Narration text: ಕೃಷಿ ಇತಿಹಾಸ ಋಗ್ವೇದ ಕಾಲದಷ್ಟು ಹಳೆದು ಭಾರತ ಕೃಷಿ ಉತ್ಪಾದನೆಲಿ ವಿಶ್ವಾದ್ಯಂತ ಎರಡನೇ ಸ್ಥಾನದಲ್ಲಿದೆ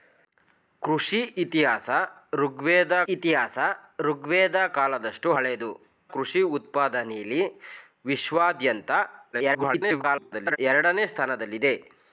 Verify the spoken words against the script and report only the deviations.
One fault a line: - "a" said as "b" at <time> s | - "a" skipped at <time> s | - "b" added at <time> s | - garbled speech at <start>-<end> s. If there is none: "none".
- "ಇತಿಹಾಸ ಋಗ್ವೇದ" added at 3.1 s
- "ಭಾರತ" skipped at 5.7 s
- garbled speech at 9.3-10.6 s